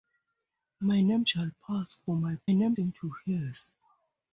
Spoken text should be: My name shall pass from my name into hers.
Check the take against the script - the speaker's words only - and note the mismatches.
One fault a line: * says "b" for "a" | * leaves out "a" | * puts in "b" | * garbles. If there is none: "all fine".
all fine